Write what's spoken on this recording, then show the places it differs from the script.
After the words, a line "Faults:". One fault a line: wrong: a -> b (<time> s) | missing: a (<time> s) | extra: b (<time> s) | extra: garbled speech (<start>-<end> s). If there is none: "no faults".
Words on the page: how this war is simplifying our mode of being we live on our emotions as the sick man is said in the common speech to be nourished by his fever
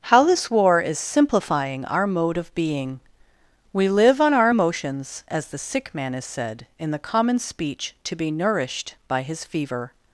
how this war is simplifying our mode of being we live on our emotions as the sick man is said in the common speech to be nourished by his fever
Faults:
no faults